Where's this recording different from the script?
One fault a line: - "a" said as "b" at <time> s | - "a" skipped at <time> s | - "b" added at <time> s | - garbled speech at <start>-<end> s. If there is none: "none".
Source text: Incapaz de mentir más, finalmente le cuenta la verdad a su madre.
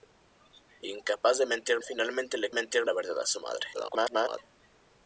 - "más" skipped at 1.8 s
- "cuenta" said as "mentir" at 2.5 s
- garbled speech at 3.7-4.4 s